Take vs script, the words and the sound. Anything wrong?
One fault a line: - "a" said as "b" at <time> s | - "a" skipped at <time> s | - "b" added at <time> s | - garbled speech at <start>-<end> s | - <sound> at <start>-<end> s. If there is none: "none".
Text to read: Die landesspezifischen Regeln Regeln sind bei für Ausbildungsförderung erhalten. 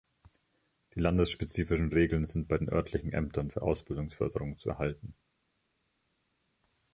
- "Regeln" skipped at 2.2 s
- "den örtlichen Ämtern" added at 2.6 s
- "zu" added at 4.6 s